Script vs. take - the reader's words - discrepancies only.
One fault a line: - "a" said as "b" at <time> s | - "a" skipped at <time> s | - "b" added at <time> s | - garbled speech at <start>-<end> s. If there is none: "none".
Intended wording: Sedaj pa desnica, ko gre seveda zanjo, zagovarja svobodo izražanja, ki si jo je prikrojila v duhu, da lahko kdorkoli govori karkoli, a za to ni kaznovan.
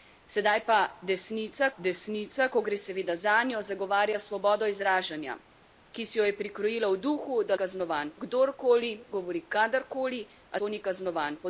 - "desnica" added at 1.8 s
- "lahko" said as "kaznovan" at 7.5 s
- "za" skipped at 10.6 s